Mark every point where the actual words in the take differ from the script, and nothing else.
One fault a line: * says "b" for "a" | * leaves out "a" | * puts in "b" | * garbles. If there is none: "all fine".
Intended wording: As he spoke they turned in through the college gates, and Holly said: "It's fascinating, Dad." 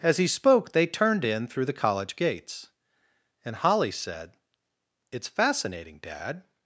all fine